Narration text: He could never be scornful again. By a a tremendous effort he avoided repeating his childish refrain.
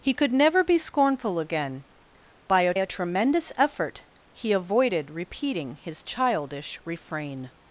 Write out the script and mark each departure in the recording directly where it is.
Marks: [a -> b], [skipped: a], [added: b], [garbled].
He could never be scornful again. By a a tremendous effort he avoided repeating his childish refrain.